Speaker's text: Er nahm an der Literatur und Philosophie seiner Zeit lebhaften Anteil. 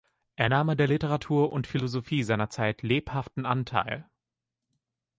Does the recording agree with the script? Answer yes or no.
yes